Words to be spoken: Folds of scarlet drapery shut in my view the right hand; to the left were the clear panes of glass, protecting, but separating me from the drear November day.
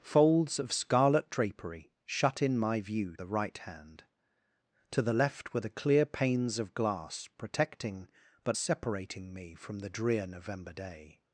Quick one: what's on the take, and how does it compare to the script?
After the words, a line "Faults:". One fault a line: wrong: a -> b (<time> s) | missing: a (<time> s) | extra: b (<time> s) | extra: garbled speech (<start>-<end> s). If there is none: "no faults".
Folds of scarlet drapery shut in my view the right hand; to the left were the clear panes of glass, protecting, but separating me from the drear November day.
Faults:
no faults